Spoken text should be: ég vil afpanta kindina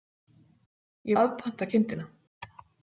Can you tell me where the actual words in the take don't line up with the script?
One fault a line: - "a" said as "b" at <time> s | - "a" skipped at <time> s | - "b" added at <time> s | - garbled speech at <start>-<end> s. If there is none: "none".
- "vil" skipped at 1.2 s